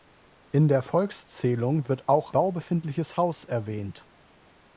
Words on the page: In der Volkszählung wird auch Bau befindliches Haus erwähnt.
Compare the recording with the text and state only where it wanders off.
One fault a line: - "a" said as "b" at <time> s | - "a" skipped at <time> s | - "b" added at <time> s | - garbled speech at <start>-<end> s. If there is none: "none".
none